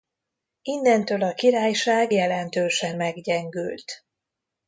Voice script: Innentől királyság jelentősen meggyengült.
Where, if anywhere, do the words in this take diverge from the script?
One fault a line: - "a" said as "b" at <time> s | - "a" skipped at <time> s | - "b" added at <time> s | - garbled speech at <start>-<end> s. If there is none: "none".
- "a" added at 1.2 s